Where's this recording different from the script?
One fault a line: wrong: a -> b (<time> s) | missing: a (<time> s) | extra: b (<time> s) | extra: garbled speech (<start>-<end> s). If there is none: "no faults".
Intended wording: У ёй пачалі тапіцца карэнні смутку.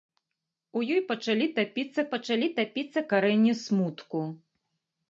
extra: пачалі тапіцца (2.1 s)